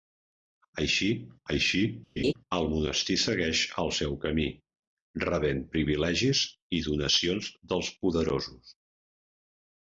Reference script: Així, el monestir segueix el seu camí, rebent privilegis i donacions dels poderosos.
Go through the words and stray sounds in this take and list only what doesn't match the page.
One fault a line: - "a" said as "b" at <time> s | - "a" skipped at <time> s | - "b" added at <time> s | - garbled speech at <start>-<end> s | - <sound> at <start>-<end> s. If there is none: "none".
- "així" added at 1.5 s
- laugh at 2.2-2.3 s